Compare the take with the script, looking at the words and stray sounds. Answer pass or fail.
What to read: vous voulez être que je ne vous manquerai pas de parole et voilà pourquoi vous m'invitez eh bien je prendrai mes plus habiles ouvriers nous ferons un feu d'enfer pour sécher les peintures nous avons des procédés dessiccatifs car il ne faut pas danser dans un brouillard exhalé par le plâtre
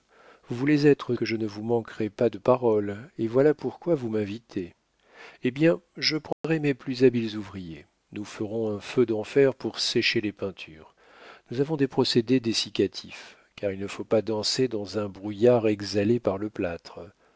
fail